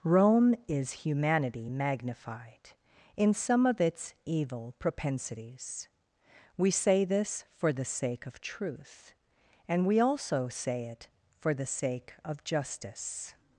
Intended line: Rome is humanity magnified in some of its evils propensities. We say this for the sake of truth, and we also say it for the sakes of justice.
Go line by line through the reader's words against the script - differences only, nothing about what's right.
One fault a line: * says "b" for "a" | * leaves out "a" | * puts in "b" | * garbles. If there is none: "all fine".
* says "evil" for "evils"
* says "sake" for "sakes"